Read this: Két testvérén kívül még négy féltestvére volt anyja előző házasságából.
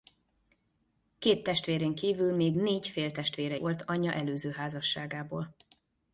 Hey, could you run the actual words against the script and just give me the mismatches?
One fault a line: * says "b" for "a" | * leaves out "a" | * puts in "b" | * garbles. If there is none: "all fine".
all fine